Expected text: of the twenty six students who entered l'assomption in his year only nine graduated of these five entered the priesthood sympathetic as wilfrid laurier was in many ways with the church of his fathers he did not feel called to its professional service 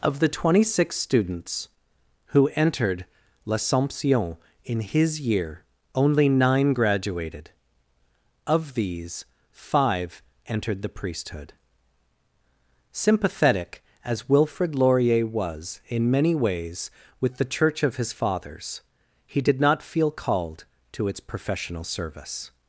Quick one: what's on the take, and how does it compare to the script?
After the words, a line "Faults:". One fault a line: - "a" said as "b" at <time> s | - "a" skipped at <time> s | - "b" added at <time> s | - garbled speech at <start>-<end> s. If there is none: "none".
of the twenty six students who entered l'assomption in his year only nine graduated of these five entered the priesthood sympathetic as wilfrid laurier was in many ways with the church of his fathers he did not feel called to its professional service
Faults:
none